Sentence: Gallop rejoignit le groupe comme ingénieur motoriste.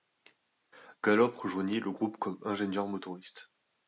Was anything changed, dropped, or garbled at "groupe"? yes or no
no